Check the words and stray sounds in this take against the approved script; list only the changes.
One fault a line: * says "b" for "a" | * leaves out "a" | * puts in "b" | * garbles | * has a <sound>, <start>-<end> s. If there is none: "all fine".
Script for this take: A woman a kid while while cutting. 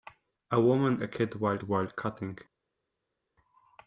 all fine